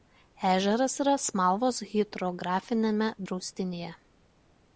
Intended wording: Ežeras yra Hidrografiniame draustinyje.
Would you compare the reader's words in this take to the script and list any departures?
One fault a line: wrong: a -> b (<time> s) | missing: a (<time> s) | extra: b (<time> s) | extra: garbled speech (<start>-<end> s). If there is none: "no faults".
extra: Smalvos (1.2 s)